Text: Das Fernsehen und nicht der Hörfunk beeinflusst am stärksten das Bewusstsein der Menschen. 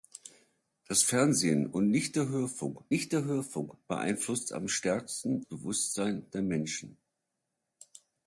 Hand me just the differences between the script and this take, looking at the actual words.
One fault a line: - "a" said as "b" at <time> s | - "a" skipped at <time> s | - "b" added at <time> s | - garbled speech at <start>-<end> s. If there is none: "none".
- "nicht der Hörfunk" added at 2.9 s
- "das" skipped at 5.4 s